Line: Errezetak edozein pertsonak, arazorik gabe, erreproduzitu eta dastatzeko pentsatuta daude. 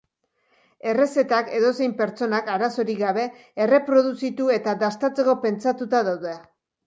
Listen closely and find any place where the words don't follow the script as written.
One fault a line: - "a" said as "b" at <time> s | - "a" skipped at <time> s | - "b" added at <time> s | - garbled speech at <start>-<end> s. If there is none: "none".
none